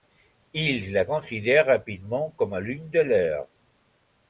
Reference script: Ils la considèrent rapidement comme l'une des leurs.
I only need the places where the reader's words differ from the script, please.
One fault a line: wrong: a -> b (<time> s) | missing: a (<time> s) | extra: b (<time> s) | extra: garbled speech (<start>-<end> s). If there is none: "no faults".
no faults